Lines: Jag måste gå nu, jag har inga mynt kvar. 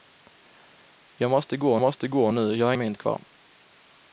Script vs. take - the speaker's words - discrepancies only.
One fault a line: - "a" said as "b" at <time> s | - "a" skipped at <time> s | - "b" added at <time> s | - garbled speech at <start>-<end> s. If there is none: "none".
- "måste gå" added at 1.8 s
- "inga" skipped at 2.7 s